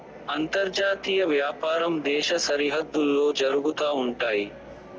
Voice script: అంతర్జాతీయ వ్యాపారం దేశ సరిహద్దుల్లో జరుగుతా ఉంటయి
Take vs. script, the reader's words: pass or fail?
pass